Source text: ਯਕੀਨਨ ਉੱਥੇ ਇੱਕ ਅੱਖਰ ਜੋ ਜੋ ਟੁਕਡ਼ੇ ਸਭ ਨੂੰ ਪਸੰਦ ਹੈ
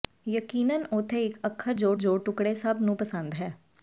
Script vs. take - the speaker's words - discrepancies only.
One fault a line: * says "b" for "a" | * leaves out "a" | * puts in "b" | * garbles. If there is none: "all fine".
all fine